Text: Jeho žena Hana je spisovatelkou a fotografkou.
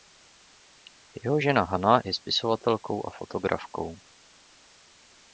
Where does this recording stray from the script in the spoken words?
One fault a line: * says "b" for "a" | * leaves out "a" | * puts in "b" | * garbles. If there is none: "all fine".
all fine